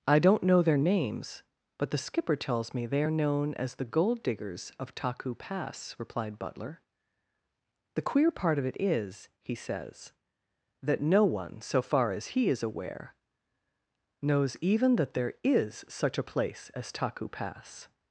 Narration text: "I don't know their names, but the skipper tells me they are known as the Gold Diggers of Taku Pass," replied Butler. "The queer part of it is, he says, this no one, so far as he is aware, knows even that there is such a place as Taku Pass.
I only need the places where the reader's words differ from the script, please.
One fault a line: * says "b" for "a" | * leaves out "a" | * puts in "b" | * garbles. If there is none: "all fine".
* says "that" for "this"